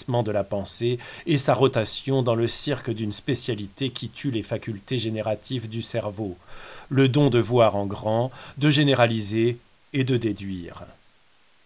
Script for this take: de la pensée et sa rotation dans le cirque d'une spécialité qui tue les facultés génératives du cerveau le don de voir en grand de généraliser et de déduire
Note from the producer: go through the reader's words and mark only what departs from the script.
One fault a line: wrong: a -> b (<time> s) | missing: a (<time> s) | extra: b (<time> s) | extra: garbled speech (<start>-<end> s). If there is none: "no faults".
no faults